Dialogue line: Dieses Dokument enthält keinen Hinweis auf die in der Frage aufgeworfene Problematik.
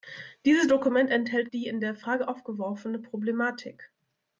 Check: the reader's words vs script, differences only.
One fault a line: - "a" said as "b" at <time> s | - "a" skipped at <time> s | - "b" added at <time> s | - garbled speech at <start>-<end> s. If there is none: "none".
- "keinen Hinweis auf" skipped at 1.5 s